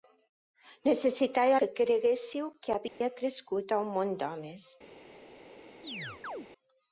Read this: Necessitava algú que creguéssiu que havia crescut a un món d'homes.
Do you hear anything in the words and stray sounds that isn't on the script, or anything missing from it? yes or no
yes